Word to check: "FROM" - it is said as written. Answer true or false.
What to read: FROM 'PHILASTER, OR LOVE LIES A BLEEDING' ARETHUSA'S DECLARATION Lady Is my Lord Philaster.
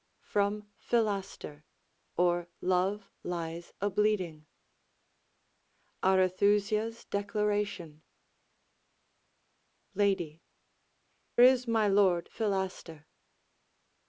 true